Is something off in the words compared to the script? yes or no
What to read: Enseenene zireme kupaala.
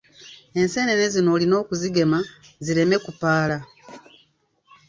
yes